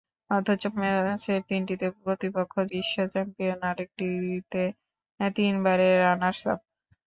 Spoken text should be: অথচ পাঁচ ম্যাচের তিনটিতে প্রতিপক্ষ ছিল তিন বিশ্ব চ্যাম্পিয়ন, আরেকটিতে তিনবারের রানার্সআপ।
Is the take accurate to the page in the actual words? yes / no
no